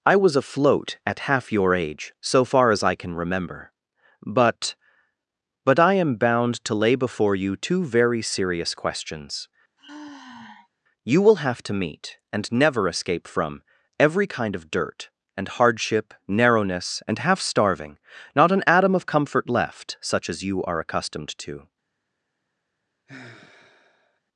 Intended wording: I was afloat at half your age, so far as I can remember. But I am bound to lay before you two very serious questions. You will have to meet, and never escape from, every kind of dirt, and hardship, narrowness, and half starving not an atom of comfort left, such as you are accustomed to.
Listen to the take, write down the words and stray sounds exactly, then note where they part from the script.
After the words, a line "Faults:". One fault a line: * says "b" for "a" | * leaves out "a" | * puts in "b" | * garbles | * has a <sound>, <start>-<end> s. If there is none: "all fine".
I was afloat at half your age, so far as I can remember. But But I am bound to lay before you two very serious questions. You will have to meet, and never escape from, every kind of dirt, and hardship, narrowness, and half starving not an atom of comfort left, such as you are accustomed to.
Faults:
* puts in "But"
* has a sigh, 9.8-10.7 s
* has a sigh, 23.1-24.2 s